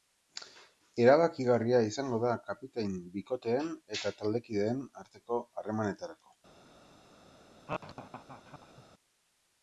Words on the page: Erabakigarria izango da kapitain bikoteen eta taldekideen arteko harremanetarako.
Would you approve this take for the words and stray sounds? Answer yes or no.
no